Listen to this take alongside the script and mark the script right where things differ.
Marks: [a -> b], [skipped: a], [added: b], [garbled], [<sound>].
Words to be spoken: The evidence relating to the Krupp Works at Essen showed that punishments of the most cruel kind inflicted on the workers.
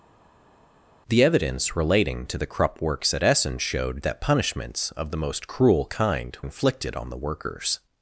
The evidence relating to the Krupp Works at Essen showed that punishments of the most cruel kind inflicted on the workers.